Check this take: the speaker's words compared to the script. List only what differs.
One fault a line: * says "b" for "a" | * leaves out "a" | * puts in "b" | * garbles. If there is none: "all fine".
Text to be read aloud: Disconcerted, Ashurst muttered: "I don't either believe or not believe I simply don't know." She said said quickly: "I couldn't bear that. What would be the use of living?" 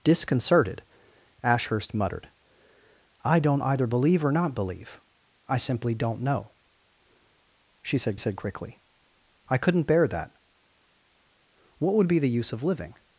all fine